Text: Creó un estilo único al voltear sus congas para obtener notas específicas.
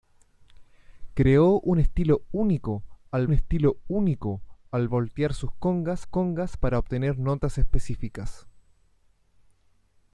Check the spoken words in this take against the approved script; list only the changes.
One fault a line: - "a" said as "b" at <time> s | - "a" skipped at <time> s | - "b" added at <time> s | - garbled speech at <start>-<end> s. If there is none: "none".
- "estilo único al" added at 3.3 s
- "congas" added at 6.1 s